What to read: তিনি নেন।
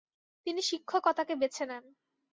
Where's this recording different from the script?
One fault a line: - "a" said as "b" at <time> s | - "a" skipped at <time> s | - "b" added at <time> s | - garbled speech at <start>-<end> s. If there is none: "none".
- "শিক্ষকতাকে বেছে" added at 0.6 s